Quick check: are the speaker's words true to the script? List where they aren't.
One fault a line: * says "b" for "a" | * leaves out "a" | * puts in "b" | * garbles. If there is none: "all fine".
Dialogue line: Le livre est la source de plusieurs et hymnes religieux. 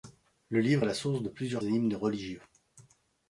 all fine